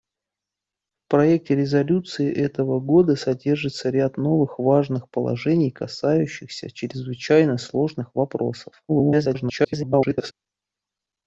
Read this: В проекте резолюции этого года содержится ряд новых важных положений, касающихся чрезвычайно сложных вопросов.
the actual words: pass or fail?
fail